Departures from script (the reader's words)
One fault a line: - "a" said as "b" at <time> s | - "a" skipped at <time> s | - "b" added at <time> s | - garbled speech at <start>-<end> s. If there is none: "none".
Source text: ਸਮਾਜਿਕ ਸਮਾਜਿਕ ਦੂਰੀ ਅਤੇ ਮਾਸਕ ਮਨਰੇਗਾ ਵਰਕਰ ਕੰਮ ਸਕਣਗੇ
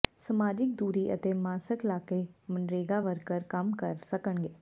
- "ਸਮਾਜਿਕ" skipped at 0.7 s
- "ਲਾਕੇ" added at 1.9 s
- "ਕਰ" added at 3.8 s